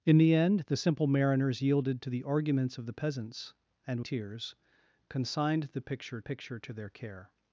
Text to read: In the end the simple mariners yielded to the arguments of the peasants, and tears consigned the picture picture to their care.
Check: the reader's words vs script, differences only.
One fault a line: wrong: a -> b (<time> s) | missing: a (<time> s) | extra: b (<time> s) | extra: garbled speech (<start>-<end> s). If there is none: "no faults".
no faults